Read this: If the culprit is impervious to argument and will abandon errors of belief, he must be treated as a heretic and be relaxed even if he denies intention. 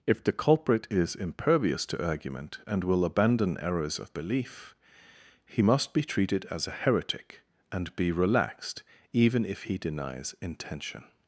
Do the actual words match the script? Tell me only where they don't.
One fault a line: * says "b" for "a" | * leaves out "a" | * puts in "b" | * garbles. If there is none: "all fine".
all fine